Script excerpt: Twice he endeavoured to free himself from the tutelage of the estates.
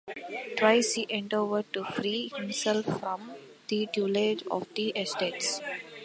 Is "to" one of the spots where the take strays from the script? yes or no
no